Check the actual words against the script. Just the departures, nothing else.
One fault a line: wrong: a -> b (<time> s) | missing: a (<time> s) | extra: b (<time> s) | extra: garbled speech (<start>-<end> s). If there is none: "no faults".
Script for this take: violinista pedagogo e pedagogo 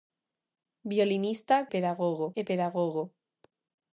no faults